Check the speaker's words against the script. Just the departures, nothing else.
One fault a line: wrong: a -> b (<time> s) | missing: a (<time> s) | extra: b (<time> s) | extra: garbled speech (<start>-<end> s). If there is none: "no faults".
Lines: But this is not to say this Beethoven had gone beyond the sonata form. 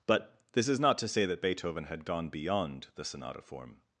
wrong: this -> that (1.2 s)